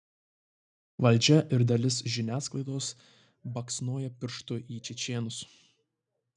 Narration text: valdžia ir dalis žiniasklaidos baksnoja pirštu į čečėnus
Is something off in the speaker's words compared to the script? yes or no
no